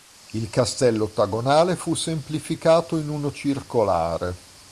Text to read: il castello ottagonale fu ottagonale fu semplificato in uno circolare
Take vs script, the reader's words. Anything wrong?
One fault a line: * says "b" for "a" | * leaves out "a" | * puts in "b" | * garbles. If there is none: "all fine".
* leaves out "ottagonale fu"